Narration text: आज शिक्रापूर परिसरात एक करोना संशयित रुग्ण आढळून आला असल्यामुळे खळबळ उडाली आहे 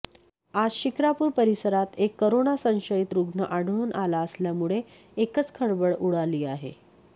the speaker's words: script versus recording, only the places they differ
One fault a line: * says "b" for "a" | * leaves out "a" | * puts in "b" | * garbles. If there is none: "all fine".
* puts in "एकच"